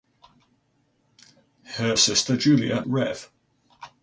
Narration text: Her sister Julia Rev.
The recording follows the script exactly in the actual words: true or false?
true